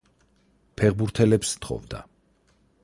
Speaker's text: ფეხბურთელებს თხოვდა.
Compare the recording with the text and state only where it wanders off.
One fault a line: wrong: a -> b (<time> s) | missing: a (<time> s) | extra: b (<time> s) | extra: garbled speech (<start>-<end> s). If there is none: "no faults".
no faults